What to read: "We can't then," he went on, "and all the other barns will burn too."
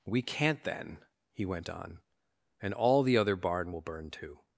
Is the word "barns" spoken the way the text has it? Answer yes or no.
no